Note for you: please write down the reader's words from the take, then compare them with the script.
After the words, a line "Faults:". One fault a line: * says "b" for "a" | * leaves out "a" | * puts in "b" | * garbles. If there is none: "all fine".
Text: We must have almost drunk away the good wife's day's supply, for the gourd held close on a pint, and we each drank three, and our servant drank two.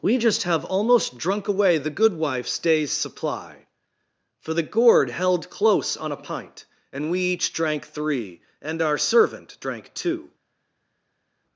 We just have almost drunk away the good wife's day's supply, for the gourd held close on a pint, and we each drank three, and our servant drank two.
Faults:
* says "just" for "must"